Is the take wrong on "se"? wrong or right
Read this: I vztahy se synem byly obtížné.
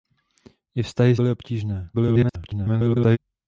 wrong